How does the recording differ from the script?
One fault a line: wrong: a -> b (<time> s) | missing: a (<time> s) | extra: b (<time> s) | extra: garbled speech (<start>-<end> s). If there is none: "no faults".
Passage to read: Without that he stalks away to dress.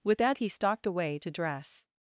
wrong: Without -> With (0.0 s)
wrong: stalks -> stalked (0.5 s)